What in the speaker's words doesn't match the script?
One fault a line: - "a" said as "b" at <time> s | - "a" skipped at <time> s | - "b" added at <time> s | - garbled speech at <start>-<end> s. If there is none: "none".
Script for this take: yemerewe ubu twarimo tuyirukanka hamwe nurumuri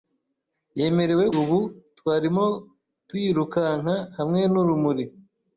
none